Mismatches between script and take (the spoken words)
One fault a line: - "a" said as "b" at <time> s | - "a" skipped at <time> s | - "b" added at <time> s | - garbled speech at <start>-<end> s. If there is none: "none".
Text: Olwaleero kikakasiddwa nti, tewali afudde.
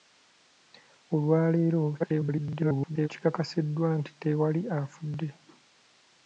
- garbled speech at 2.0-3.1 s